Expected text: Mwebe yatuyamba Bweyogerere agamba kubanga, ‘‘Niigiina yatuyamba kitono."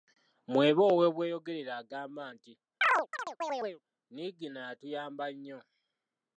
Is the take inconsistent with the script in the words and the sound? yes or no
yes